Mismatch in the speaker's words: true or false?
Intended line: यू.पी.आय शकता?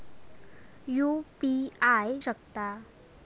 false